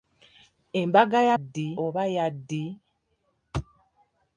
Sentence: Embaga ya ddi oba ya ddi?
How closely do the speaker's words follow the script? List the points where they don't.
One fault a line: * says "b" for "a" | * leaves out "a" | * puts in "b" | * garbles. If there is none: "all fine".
all fine